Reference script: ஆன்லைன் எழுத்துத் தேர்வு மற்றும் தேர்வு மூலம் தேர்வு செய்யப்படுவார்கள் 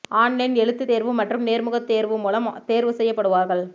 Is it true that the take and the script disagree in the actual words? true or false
true